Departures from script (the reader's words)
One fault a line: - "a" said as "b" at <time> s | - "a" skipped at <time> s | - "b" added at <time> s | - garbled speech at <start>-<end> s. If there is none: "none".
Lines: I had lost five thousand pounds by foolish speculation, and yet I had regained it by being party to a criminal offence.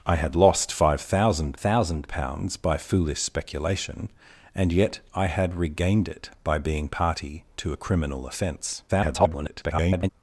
- "thousand" added at 1.5 s
- garbled speech at 8.9-10.1 s